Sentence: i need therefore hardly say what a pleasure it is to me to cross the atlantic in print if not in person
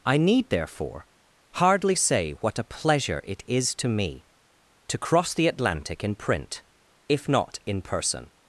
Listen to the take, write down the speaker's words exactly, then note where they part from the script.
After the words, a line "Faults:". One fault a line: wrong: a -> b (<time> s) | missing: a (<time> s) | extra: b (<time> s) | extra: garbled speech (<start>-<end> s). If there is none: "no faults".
i need therefore hardly say what a pleasure it is to me to cross the atlantic in print if not in person
Faults:
no faults